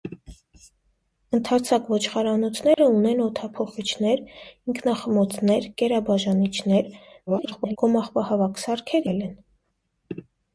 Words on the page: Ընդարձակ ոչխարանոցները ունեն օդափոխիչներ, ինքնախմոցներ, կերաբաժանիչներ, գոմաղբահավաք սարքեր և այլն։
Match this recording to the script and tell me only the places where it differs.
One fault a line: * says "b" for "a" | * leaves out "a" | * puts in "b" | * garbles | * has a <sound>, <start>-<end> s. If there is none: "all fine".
* has a dropout, 2.7-2.8 s
* garbles
* leaves out "և"